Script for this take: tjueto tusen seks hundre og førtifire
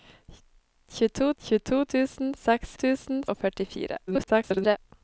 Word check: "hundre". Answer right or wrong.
wrong